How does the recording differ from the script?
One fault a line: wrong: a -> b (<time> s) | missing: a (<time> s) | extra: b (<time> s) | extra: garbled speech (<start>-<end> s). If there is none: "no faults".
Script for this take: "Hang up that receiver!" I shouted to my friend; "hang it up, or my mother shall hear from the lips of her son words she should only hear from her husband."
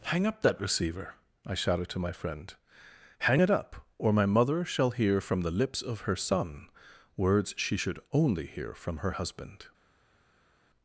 no faults